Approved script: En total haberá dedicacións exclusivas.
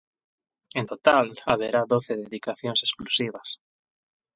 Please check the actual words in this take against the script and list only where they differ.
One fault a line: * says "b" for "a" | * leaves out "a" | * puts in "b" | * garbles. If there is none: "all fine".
* puts in "doce"